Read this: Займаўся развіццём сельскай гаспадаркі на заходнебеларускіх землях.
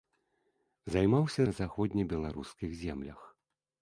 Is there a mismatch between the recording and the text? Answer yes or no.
yes